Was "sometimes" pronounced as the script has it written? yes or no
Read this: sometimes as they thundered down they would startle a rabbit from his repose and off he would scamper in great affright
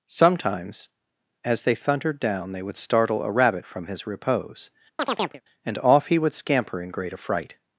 yes